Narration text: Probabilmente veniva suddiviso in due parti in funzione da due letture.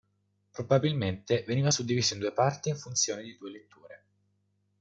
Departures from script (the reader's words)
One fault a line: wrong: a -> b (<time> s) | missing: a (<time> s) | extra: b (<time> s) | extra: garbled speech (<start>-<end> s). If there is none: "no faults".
wrong: da -> di (3.2 s)